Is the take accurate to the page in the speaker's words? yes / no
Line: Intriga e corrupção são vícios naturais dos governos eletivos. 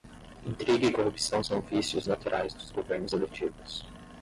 yes